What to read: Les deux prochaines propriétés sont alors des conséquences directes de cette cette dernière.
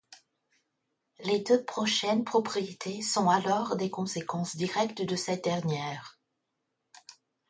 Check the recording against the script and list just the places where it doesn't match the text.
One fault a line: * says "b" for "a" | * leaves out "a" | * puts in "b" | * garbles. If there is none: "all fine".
* leaves out "cette"